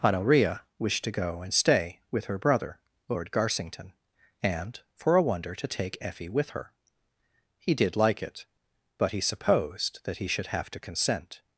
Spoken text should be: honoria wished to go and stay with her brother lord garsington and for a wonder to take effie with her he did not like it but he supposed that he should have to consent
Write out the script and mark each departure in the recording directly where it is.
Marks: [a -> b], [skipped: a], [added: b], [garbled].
honoria wished to go and stay with her brother lord garsington and for a wonder to take effie with her he did [skipped: not] like it but he supposed that he should have to consent